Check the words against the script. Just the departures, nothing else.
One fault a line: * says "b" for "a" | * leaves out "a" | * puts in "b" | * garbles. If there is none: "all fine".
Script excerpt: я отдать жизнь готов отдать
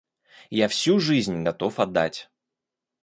* says "всю" for "отдать"